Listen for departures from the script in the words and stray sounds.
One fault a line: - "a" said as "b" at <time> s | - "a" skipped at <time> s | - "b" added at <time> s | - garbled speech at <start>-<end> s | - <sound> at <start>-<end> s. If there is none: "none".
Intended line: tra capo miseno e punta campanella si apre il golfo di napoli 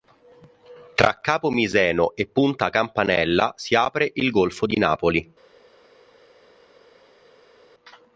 none